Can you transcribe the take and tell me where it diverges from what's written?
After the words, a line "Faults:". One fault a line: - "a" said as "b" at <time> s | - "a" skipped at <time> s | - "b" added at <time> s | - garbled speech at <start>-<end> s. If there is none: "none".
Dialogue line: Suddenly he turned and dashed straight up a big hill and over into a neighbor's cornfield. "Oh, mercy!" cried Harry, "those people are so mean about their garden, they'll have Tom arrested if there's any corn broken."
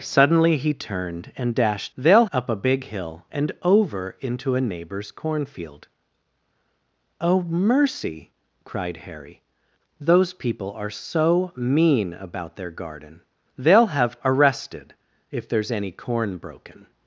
Suddenly he turned and dashed they'll up a big hill and over into a neighbor's cornfield. "Oh, mercy!" cried Harry, "those people are so mean about their garden, they'll have Arrested if there's any corn broken."
Faults:
- "straight" said as "they'll" at 2.0 s
- "Tom" skipped at 14.2 s